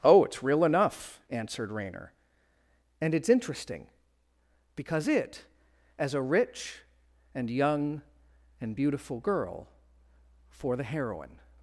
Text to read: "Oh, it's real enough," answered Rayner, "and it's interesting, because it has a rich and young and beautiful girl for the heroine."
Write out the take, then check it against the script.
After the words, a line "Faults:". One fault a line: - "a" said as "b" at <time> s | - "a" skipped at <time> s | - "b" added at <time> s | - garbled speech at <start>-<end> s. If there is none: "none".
"Oh, it's real enough," answered Rayner, "and it's interesting, because it as a rich and young and beautiful girl for the heroine."
Faults:
- "has" said as "as" at 6.0 s